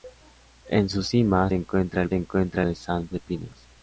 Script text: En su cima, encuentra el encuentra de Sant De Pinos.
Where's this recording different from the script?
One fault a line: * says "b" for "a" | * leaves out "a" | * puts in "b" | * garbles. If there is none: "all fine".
all fine